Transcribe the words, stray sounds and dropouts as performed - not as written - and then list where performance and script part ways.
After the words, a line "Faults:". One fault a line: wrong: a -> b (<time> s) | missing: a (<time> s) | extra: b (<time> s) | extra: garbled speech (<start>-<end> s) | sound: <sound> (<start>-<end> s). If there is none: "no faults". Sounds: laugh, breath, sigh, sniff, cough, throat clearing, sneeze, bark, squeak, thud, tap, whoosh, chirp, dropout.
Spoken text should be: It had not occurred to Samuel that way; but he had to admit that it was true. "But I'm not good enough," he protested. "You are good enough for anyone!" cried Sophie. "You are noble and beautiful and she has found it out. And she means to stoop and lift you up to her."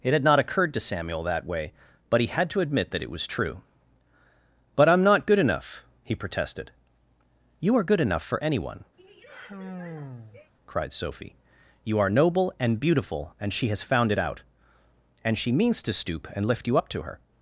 It had not occurred to Samuel that way; but he had to admit that it was true. "But I'm not good enough," he protested. "You are good enough for anyone!" cried Sophie. "You are noble and beautiful and she has found it out. And she means to stoop and lift you up to her."
Faults:
sound: sigh (9.0-10.5 s)